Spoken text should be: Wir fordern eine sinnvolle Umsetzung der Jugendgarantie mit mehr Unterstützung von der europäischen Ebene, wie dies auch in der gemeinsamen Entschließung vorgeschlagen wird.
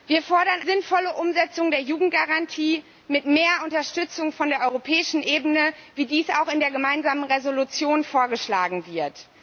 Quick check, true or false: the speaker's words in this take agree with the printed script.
false